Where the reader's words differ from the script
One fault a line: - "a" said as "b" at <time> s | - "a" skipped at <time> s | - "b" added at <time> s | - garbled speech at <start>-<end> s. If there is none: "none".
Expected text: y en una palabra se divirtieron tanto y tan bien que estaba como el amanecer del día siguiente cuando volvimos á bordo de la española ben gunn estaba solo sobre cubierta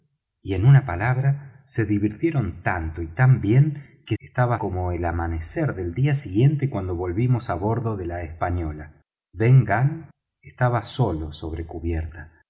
none